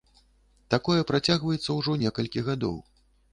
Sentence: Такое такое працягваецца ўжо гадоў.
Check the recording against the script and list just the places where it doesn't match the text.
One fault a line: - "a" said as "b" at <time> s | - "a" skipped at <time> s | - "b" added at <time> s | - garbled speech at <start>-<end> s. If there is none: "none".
- "такое" skipped at 1.0 s
- "некалькі" added at 2.1 s